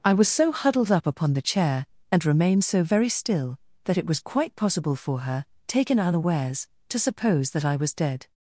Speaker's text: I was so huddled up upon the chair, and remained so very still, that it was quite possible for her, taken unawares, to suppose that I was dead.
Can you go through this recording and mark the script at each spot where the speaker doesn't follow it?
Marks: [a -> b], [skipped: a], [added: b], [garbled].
I was so huddled up upon the chair, and remained so very still, that it was quite possible for her, taken unawares, to suppose that I was dead.